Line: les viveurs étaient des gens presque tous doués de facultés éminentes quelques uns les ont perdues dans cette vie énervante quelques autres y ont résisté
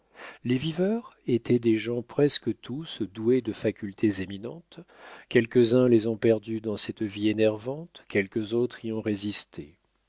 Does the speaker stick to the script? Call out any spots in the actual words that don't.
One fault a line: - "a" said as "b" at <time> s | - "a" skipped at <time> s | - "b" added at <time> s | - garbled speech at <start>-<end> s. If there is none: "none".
none